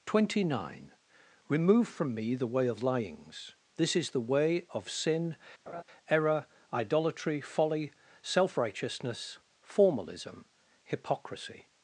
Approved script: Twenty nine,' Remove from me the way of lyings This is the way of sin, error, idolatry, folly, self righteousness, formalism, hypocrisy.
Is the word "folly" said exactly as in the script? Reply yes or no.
yes